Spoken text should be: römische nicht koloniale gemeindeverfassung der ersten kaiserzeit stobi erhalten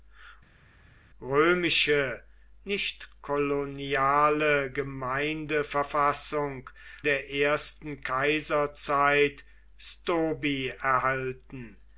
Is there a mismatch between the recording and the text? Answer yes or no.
no